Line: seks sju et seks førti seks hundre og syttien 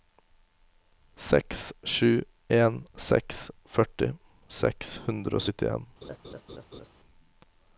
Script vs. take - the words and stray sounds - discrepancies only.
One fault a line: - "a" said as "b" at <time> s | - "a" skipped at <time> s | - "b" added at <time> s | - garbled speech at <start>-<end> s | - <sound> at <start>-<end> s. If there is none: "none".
- "et" said as "en" at 2.6 s
- laugh at 6.0-6.9 s